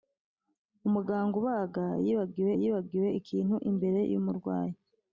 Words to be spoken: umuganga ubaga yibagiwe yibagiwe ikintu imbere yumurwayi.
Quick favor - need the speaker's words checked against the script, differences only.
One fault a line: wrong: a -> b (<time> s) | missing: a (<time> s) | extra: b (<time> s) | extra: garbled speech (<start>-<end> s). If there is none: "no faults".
no faults